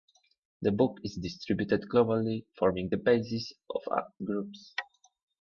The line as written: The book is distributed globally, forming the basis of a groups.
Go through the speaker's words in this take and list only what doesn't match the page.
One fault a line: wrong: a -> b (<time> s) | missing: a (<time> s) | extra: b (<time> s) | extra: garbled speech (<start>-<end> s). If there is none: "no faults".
no faults